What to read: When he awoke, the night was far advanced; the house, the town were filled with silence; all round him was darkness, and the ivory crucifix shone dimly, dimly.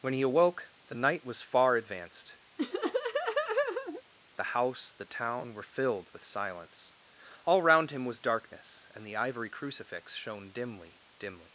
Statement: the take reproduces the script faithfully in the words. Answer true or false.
true